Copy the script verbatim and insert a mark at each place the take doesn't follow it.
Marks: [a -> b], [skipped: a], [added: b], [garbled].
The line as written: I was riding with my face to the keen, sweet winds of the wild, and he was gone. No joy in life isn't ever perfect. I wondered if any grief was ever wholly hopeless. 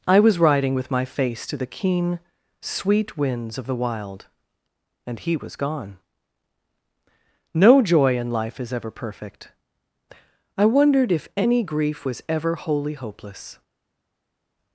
I was riding with my face to the keen, sweet winds of the wild, and he was gone. No joy in life [isn't -> is] ever perfect. I wondered if any grief was ever wholly hopeless.